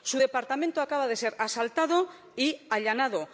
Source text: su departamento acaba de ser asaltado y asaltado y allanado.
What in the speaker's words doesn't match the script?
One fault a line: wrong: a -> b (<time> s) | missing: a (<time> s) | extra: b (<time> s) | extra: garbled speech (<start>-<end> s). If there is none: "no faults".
missing: asaltado y (2.6 s)